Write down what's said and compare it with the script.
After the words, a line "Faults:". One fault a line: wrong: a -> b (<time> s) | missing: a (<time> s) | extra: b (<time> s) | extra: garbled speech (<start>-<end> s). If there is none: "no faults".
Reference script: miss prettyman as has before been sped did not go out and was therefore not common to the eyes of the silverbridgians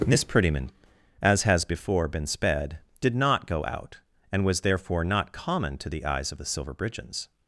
miss prettyman as has before been sped did not go out and was therefore not common to the eyes of the silverbridgians
Faults:
no faults